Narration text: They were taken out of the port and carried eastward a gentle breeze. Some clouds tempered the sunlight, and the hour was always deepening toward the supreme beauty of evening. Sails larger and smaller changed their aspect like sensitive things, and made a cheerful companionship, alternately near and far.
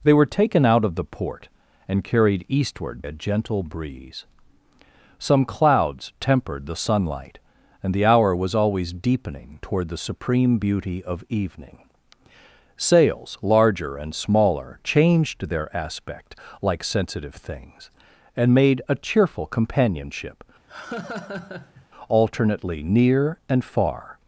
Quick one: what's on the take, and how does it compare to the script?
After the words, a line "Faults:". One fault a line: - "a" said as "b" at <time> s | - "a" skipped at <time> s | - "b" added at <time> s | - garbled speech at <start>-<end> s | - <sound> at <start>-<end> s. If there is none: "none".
They were taken out of the port and carried eastward a gentle breeze. Some clouds tempered the sunlight, and the hour was always deepening toward the supreme beauty of evening. Sails larger and smaller changed their aspect like sensitive things, and made a cheerful companionship, alternately near and far.
Faults:
- laugh at 20.7-21.9 s